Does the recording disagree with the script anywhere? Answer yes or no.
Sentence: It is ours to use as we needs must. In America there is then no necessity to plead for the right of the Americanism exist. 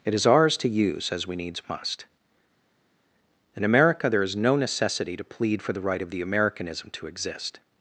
yes